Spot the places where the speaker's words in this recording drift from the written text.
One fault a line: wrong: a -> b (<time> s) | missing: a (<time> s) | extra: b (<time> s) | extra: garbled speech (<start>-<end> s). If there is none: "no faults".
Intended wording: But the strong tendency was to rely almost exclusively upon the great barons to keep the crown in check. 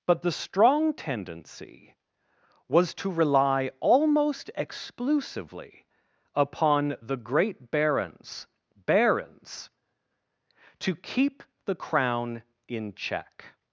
extra: barons (8.7 s)